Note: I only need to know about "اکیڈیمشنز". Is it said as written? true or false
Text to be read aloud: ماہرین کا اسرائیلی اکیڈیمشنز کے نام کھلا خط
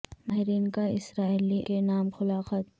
false